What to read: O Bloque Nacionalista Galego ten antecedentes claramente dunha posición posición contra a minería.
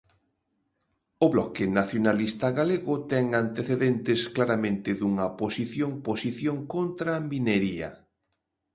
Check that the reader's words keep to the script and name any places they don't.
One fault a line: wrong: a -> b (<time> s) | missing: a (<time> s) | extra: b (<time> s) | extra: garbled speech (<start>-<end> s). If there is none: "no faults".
no faults